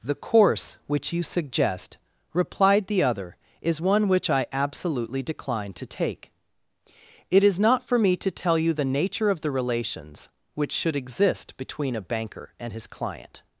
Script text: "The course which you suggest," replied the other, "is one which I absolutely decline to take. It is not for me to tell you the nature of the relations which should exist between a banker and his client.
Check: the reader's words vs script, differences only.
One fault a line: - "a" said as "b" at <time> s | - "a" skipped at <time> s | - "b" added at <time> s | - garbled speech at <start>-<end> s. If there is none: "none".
none